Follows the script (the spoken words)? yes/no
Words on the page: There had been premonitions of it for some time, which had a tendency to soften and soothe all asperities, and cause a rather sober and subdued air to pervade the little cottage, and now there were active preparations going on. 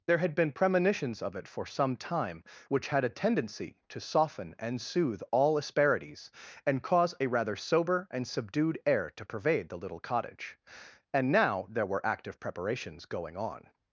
yes